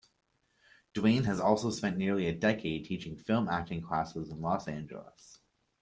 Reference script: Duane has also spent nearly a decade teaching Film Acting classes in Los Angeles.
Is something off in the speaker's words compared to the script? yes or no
no